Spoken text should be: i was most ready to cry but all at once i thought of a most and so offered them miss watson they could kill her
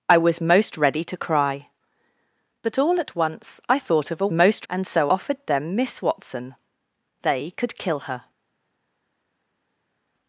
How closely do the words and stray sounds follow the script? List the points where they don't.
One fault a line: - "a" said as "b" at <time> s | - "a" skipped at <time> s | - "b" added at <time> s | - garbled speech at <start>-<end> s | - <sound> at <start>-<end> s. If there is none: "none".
none